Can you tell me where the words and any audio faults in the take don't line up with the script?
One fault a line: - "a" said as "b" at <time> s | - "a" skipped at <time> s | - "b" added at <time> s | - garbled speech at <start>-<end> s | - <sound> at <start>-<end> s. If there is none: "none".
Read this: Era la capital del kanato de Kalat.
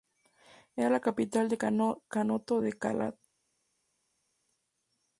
none